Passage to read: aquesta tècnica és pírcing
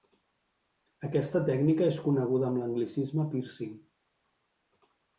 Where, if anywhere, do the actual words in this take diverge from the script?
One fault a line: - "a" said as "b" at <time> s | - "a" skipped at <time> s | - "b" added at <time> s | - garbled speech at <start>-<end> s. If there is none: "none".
- "coneguda amb l'anglicisme" added at 2.1 s